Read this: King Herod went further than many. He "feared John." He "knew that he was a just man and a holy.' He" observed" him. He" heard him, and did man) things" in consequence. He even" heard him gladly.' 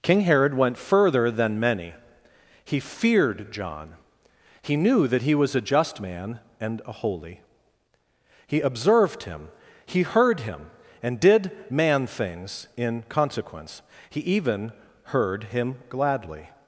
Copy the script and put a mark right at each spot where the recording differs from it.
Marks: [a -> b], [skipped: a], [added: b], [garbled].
King Herod went further than many. He "feared John." He "knew that he was a just man and a holy.' He" observed" him. He" heard him, and did man) things" in consequence. He even" heard him gladly.'